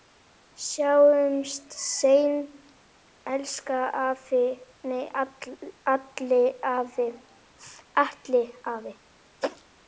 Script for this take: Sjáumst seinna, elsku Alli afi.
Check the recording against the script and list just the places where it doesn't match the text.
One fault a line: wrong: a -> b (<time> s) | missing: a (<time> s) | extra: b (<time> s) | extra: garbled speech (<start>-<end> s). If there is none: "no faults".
no faults